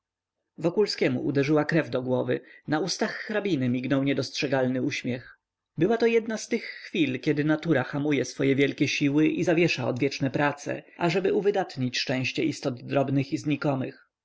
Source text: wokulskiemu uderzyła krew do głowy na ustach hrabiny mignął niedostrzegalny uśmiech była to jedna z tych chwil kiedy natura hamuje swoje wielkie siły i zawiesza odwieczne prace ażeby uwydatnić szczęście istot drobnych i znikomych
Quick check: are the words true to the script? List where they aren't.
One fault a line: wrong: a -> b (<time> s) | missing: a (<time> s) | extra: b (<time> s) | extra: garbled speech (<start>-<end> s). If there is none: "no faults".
no faults